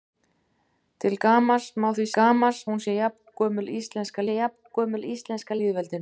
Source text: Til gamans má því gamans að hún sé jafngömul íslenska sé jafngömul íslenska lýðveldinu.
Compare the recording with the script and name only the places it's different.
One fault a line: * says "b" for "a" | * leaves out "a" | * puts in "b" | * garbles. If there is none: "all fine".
all fine